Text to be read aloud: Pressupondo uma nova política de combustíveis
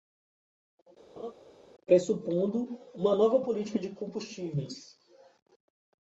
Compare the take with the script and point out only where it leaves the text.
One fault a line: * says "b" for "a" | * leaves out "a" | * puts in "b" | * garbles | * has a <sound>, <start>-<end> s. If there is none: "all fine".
* has a laugh, 1.2-1.3 s